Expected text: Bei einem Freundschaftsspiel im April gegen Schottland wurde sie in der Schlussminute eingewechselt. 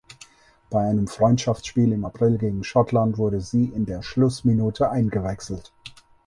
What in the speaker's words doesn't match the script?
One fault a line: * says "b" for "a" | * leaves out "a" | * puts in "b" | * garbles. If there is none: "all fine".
all fine